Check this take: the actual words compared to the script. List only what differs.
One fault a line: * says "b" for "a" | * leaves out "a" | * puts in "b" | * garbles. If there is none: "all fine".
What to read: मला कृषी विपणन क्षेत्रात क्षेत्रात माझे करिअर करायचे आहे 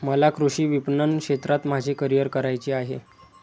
* leaves out "क्षेत्रात"